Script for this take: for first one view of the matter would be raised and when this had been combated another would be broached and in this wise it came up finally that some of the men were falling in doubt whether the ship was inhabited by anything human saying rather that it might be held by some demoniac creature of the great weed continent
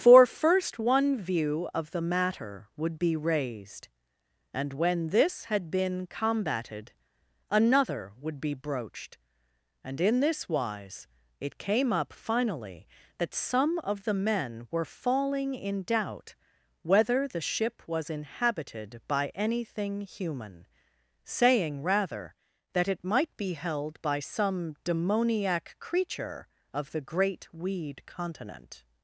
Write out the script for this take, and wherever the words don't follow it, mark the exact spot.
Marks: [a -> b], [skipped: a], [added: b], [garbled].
for first one view of the matter would be raised and when this had been combated another would be broached and in this wise it came up finally that some of the men were falling in doubt whether the ship was inhabited by anything human saying rather that it might be held by some demoniac creature of the great weed continent